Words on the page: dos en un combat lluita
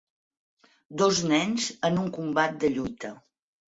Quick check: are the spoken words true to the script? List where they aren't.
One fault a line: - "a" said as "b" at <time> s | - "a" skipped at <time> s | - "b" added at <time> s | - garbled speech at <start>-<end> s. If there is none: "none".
- "nens" added at 1.3 s
- "de" added at 2.7 s